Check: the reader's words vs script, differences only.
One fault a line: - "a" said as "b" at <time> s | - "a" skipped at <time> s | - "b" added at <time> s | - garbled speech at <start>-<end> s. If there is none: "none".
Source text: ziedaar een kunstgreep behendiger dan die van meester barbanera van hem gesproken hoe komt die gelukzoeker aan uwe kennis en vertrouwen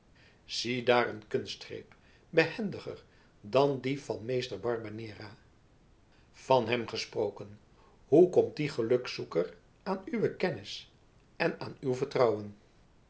- "aan uw" added at 11.6 s